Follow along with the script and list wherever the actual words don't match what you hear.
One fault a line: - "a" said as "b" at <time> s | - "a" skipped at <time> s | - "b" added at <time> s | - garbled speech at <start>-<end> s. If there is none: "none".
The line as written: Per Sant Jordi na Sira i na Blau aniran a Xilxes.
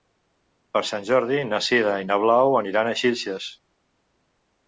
none